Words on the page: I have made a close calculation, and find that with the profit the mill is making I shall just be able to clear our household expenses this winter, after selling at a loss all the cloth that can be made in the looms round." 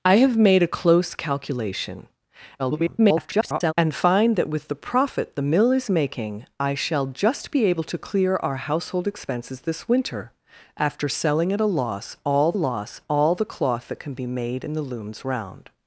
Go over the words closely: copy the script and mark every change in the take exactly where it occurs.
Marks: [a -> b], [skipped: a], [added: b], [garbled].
I have made a close calculation, [garbled] and find that with the profit the mill is making I shall just be able to clear our household expenses this winter, after selling at a loss all [added: loss all] the cloth that can be made in the looms round."